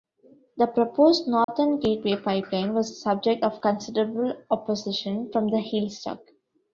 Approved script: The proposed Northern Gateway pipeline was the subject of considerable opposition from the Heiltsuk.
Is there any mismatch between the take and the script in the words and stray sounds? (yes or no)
yes